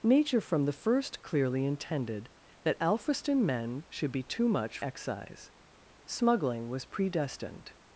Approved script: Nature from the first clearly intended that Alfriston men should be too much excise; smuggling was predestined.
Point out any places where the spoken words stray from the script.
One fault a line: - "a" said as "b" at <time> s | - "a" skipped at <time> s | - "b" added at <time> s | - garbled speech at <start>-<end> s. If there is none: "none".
none